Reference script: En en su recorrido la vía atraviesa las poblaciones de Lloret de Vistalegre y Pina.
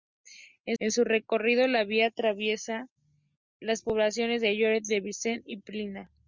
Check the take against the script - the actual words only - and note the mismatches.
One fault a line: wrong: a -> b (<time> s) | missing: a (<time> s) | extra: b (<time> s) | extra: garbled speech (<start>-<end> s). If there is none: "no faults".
no faults